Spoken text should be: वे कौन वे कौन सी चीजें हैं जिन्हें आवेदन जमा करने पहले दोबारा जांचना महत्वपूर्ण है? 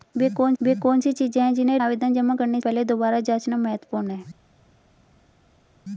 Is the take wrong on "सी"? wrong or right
right